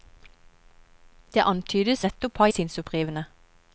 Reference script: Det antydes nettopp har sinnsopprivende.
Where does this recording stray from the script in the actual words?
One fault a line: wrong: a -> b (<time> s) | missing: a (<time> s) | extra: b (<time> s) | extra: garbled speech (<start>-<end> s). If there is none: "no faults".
no faults